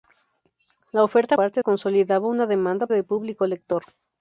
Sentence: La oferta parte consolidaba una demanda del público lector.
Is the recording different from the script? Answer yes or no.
no